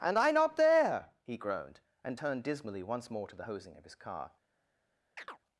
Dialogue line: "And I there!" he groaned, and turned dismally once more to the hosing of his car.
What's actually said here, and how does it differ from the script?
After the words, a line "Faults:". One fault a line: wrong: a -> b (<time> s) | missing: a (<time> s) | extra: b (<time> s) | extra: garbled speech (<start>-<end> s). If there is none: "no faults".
"And I not there!" he groaned, and turned dismally once more to the hosing of his car.
Faults:
extra: not (0.3 s)